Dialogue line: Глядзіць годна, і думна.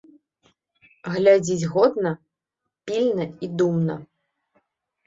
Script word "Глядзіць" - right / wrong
right